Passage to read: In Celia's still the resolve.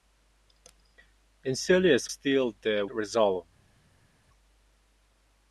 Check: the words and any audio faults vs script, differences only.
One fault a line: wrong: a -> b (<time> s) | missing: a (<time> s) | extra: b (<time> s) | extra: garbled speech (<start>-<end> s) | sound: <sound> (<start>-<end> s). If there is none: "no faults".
no faults